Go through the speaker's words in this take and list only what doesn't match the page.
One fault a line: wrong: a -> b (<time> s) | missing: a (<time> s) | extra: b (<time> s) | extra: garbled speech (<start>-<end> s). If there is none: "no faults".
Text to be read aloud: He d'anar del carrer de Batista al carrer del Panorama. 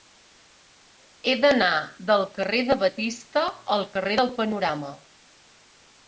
no faults